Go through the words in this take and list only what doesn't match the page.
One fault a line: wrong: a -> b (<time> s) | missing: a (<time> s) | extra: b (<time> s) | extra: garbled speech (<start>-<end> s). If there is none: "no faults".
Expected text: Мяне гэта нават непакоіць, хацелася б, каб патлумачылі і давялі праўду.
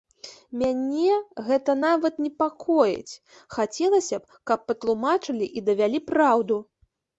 no faults